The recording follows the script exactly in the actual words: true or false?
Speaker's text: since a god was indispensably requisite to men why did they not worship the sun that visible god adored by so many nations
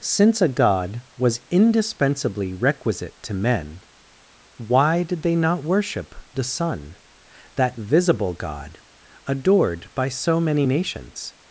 true